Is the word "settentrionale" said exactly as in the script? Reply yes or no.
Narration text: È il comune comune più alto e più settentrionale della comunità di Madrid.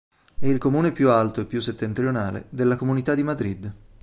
yes